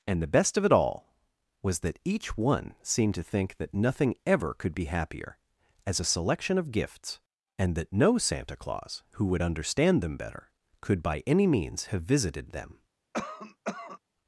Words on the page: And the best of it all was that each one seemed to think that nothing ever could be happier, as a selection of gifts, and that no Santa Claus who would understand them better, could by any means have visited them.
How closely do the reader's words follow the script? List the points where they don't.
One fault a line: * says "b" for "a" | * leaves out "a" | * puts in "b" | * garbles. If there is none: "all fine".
all fine